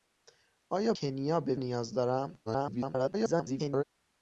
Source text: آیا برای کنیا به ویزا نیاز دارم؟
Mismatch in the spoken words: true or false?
true